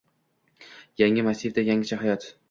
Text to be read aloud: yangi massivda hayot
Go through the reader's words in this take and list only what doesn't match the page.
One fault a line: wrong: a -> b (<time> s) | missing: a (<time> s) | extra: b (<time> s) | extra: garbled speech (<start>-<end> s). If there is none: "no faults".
extra: yangicha (1.7 s)